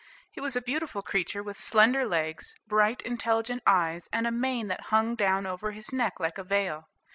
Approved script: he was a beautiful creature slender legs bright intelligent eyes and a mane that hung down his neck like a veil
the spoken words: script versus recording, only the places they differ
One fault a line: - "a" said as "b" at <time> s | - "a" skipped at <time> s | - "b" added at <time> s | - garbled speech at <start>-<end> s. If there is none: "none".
- "with" added at 1.4 s
- "over" added at 5.5 s